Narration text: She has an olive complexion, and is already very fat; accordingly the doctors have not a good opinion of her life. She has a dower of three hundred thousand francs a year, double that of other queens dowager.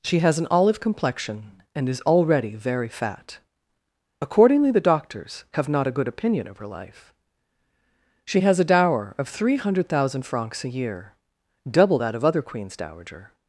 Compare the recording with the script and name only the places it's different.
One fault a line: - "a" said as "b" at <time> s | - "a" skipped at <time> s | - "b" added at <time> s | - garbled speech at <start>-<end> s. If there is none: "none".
none